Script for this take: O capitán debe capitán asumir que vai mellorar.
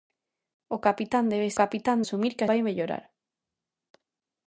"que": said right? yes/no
yes